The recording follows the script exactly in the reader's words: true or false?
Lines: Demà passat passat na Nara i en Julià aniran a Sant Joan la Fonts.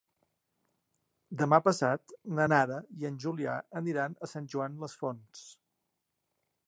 false